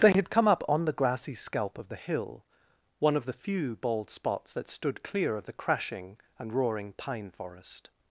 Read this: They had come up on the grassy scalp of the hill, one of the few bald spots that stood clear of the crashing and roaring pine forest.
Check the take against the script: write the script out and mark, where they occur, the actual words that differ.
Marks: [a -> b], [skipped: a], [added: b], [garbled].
They had come up on the grassy scalp of the hill, one of the few bald spots that stood clear of the crashing and roaring pine forest.